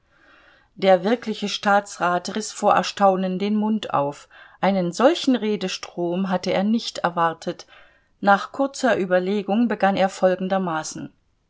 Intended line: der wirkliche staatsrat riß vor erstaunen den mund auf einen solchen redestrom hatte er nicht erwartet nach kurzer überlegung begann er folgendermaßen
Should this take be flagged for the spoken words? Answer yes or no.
no